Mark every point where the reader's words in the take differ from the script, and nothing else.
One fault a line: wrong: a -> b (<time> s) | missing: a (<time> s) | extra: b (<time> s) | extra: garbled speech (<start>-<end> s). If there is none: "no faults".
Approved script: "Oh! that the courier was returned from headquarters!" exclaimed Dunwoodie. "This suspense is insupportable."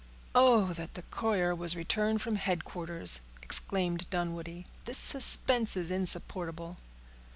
no faults